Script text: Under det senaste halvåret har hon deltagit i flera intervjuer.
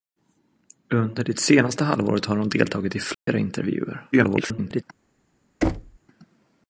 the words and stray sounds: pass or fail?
fail